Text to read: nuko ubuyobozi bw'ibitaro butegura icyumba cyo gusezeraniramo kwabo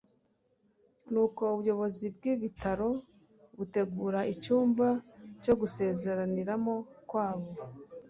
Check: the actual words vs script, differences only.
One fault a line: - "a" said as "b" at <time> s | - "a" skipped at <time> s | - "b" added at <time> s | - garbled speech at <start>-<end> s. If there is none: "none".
none